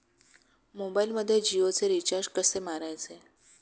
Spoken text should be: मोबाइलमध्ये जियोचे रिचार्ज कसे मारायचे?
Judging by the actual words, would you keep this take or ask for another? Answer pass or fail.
pass